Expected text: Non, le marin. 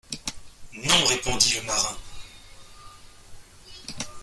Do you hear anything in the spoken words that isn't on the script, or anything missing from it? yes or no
yes